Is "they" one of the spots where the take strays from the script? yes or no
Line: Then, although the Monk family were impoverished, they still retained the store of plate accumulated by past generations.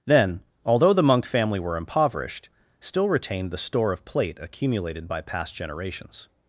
yes